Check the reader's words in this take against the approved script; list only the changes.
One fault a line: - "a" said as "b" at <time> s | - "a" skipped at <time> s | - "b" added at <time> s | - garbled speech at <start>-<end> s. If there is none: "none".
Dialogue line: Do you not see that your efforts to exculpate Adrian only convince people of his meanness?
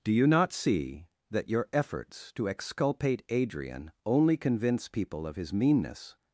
none